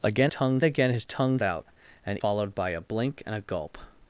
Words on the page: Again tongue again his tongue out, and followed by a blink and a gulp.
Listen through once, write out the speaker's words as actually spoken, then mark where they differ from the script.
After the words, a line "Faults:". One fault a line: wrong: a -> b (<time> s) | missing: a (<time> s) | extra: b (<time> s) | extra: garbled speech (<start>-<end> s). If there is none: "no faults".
Again tongue again his tongue out, and followed by a blink and a gulp.
Faults:
no faults